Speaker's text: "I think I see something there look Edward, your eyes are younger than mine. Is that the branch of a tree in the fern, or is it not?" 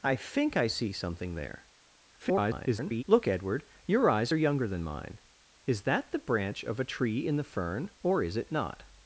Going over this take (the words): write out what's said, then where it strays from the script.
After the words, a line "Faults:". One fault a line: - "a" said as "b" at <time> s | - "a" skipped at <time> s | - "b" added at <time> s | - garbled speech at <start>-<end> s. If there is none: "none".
"I think I see something there [garbled] look Edward, your eyes are younger than mine. Is that the branch of a tree in the fern, or is it not?"
Faults:
- garbled speech at 2.2-3.0 s